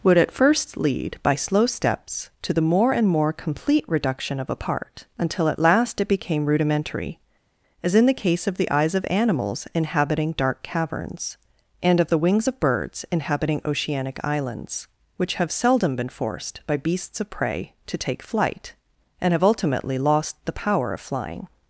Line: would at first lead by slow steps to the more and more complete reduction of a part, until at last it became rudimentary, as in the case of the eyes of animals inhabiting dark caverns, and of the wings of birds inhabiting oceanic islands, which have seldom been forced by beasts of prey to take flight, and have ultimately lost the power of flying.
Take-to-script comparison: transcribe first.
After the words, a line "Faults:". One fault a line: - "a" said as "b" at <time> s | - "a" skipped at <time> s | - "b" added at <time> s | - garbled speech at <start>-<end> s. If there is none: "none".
would at first lead by slow steps to the more and more complete reduction of a part, until at last it became rudimentary, as in the case of the eyes of animals inhabiting dark caverns, and of the wings of birds inhabiting oceanic islands, which have seldom been forced by beasts of prey to take flight, and have ultimately lost the power of flying.
Faults:
none